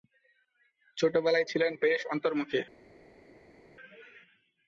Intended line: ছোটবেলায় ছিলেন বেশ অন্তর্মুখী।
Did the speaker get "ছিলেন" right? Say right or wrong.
right